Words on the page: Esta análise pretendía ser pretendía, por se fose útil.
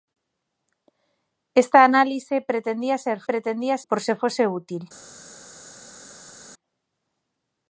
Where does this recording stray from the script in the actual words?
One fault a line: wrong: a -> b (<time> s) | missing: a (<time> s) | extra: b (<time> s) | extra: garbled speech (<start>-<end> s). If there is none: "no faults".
no faults